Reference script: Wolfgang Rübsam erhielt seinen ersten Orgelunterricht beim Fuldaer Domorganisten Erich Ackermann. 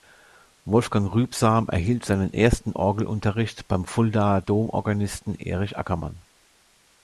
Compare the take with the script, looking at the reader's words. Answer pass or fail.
pass